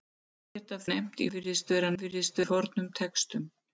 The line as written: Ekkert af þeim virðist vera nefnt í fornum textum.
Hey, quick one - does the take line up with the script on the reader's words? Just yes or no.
no